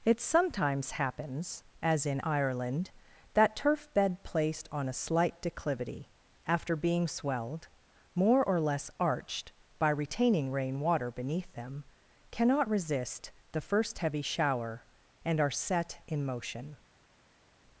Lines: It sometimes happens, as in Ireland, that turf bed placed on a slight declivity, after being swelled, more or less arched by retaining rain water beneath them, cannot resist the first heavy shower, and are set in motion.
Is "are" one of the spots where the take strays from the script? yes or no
no